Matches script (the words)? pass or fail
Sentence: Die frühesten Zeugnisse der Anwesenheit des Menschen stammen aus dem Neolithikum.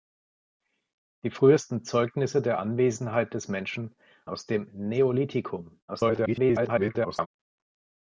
fail